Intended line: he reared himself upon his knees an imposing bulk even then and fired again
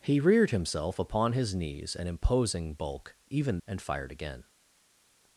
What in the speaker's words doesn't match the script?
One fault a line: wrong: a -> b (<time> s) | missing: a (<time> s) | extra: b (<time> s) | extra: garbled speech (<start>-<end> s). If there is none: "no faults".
missing: then (3.6 s)